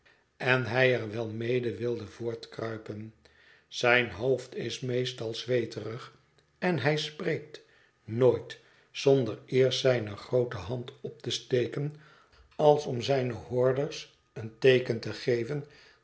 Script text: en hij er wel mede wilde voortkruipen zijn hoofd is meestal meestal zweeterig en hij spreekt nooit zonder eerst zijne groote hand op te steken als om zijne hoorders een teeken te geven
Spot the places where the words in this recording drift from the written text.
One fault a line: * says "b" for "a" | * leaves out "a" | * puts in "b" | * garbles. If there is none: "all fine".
* leaves out "meestal"